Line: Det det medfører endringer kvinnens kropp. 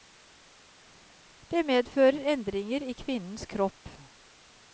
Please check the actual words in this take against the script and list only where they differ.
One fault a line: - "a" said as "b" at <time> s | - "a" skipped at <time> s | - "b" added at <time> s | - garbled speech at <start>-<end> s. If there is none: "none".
- "det" skipped at 1.6 s
- "i" added at 2.9 s